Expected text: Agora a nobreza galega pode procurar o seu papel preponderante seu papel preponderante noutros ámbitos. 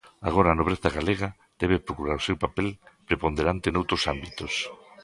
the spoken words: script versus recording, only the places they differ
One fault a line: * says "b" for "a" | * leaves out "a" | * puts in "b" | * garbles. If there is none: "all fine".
* says "debe" for "pode"
* leaves out "seu papel preponderante"